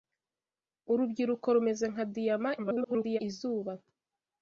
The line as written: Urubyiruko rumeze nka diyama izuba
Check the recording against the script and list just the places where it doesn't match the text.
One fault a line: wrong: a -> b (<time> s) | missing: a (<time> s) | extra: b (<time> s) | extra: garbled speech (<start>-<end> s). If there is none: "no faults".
extra: garbled speech (2.6-3.2 s)